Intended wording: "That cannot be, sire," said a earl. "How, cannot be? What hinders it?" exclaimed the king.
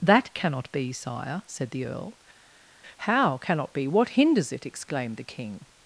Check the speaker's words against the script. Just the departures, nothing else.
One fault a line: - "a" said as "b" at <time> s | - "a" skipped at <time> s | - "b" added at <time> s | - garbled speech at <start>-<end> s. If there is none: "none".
- "a" said as "the" at 1.7 s